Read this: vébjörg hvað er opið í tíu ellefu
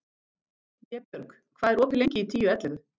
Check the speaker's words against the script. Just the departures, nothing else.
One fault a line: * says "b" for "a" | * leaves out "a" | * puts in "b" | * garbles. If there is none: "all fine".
* puts in "lengi"